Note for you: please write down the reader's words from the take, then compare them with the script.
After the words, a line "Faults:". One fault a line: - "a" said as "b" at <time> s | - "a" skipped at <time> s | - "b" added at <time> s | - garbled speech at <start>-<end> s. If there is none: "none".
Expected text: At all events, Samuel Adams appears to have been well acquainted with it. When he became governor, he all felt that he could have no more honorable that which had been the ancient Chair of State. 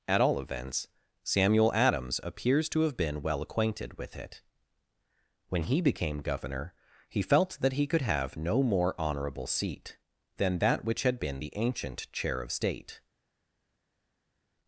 At all events, Samuel Adams appears to have been well acquainted with it. When he became governor, he felt that he could have no more honorable seat, than that which had been the ancient Chair of State.
Faults:
- "all" skipped at 7.2 s
- "seat than" added at 9.5 s